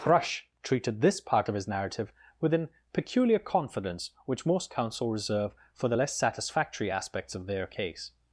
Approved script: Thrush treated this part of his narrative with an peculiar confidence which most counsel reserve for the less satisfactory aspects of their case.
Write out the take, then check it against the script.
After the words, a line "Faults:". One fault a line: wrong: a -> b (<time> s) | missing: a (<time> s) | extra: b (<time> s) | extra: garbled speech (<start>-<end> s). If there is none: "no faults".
Thrush treated this part of his narrative with an peculiar confidence which most counsel reserve for the less satisfactory aspects of their case.
Faults:
no faults